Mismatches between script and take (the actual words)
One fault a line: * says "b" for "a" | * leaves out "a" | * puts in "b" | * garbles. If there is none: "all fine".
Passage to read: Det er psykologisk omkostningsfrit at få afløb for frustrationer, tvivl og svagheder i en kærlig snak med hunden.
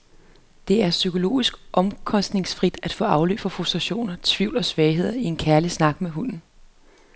all fine